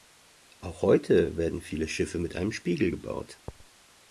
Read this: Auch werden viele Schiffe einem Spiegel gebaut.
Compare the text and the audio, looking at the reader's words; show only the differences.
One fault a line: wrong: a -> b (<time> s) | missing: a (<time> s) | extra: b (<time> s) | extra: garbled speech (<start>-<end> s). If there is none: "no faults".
extra: heute (0.8 s)
extra: mit (2.2 s)